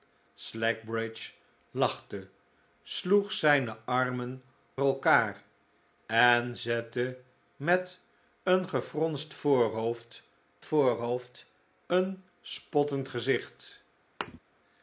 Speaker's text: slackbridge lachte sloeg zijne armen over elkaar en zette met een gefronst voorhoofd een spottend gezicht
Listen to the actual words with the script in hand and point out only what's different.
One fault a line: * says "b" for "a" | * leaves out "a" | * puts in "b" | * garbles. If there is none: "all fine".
* leaves out "over"
* puts in "voorhoofd"